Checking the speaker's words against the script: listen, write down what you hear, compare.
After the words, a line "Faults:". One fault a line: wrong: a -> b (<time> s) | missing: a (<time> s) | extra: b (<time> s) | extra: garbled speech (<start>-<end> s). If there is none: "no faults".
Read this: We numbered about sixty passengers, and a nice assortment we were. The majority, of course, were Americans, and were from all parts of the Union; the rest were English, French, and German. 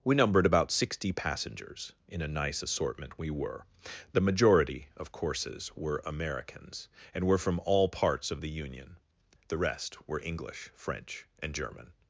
We numbered about sixty passengers, in a nice assortment we were. The majority, of courses, were Americans, and were from all parts of the Union; the rest were English, French, and German.
Faults:
wrong: and -> in (2.1 s)
wrong: course -> courses (5.1 s)